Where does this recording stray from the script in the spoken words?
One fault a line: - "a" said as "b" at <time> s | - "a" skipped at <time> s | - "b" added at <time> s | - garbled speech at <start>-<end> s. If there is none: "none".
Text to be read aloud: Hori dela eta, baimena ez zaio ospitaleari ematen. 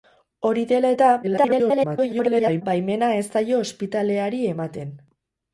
- garbled speech at 1.2-2.6 s